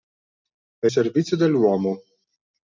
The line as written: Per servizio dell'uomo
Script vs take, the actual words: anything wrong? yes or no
no